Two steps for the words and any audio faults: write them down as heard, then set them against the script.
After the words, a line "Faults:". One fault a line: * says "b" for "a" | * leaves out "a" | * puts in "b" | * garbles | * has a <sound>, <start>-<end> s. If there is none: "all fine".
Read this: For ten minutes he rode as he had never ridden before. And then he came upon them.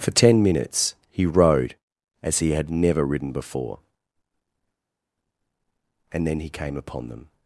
For ten minutes he rode as he had never ridden before. And then he came upon them.
Faults:
all fine